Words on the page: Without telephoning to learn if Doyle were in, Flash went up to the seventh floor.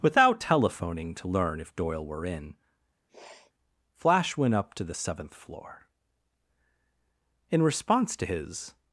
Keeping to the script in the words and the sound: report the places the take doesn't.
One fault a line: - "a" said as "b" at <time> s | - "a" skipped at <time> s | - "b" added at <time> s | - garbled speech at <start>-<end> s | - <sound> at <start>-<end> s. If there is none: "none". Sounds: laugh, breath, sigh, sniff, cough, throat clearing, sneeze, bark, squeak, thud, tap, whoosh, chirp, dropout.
- sniff at 3.1-3.5 s
- "In response to his" added at 7.5 s